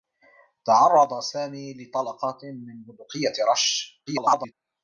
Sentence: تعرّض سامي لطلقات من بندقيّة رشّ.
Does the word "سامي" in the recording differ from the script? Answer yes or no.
no